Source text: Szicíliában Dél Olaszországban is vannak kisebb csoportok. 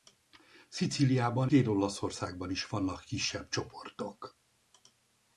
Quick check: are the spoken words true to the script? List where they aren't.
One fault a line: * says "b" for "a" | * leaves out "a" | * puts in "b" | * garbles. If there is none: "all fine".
all fine